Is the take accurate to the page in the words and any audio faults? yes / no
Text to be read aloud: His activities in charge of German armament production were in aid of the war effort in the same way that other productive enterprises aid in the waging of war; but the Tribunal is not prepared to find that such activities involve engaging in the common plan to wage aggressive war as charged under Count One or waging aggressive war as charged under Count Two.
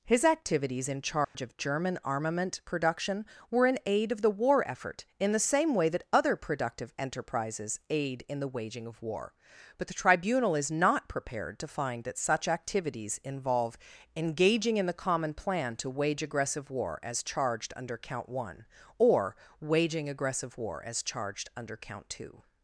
no